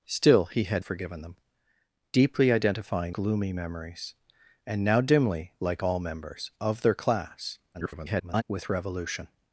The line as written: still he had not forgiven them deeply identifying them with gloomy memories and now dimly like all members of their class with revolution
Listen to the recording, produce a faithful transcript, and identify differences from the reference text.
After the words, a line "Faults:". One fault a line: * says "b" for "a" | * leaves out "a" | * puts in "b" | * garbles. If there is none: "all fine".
still he had forgiven them deeply identifying gloomy memories and now dimly like all members of their class [garbled] with revolution
Faults:
* leaves out "not"
* leaves out "them with"
* garbles